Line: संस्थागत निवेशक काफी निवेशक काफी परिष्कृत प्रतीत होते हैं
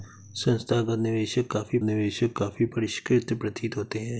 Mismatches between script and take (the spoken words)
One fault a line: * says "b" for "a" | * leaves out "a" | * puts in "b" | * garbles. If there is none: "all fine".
all fine